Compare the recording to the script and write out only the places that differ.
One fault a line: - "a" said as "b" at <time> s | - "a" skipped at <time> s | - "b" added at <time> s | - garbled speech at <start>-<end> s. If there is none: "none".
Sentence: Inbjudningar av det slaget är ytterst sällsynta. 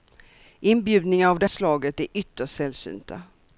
none